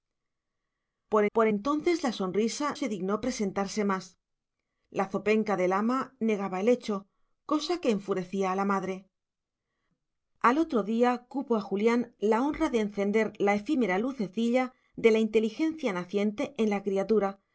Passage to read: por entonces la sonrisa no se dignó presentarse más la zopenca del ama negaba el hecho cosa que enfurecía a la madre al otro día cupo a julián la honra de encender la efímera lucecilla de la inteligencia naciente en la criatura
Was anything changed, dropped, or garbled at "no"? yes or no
yes